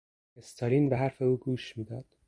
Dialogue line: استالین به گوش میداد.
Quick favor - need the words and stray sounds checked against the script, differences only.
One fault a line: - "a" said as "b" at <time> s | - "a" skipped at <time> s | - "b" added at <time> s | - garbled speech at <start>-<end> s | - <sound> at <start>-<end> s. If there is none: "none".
- "حرف او" added at 0.9 s